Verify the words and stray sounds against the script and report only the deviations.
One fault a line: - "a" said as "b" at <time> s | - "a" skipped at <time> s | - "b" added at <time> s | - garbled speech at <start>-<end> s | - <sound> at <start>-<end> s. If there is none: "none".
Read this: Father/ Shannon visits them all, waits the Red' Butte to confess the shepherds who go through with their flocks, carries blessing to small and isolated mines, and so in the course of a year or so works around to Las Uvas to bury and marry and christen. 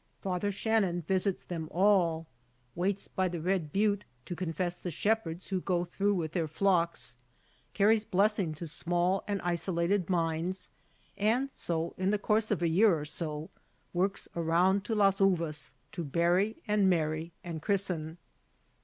- "by" added at 3.1 s